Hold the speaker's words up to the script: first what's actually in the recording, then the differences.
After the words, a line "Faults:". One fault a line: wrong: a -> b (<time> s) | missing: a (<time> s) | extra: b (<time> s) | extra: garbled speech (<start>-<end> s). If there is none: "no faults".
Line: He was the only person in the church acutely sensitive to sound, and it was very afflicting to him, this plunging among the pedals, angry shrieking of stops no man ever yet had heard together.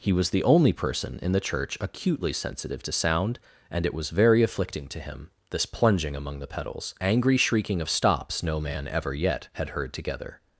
He was the only person in the church acutely sensitive to sound, and it was very afflicting to him, this plunging among the pedals, angry shrieking of stops no man ever yet had heard together.
Faults:
no faults